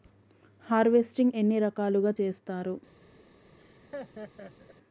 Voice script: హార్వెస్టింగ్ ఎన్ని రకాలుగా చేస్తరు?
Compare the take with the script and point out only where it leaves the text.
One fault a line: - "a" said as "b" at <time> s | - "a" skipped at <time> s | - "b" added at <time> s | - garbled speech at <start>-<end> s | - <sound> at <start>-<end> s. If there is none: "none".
- laugh at 3.6-4.8 s